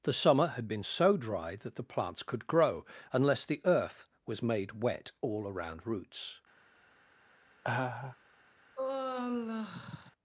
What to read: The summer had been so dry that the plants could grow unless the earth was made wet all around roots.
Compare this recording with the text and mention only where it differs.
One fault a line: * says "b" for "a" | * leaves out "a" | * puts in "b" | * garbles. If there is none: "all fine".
all fine